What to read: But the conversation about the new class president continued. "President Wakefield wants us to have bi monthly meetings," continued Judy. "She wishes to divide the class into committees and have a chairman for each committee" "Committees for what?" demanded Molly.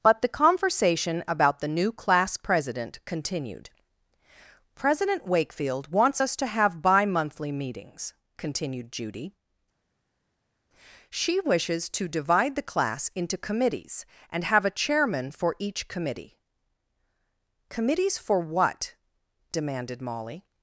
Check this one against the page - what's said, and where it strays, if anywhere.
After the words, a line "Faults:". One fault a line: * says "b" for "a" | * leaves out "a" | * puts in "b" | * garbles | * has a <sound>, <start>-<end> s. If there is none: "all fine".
But the conversation about the new class president continued. "President Wakefield wants us to have bi monthly meetings," continued Judy. "She wishes to divide the class into committees and have a chairman for each committee" "Committees for what?" demanded Molly.
Faults:
all fine